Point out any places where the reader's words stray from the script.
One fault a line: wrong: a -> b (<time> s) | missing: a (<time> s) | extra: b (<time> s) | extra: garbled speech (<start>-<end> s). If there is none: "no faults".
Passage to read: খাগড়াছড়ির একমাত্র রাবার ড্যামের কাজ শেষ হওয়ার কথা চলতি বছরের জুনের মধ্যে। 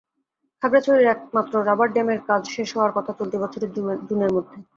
no faults